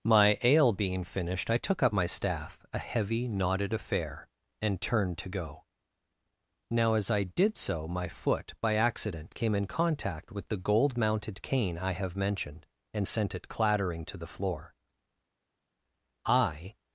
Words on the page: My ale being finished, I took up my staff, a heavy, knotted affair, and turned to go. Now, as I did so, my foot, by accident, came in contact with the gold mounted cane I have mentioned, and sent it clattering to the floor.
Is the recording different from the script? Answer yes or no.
yes